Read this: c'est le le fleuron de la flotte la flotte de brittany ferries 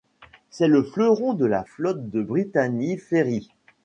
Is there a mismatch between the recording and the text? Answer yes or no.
yes